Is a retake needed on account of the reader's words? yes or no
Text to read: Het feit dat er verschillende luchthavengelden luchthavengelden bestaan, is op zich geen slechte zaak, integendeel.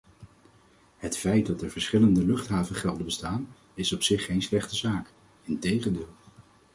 yes